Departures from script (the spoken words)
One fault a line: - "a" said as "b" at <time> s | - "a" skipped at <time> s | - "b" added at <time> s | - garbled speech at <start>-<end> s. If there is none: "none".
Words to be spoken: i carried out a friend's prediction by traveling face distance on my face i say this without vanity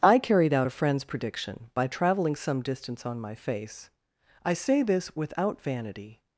- "face" said as "some" at 2.4 s